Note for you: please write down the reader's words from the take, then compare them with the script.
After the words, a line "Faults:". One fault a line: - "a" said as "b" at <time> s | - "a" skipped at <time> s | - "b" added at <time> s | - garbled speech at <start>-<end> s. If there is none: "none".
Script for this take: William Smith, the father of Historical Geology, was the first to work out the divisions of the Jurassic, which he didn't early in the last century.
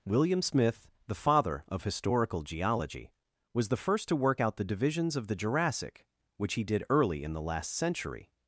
William Smith, the father of Historical Geology, was the first to work out the divisions of the Jurassic, which he did early in the last century.
Faults:
- "didn't" said as "did" at 6.6 s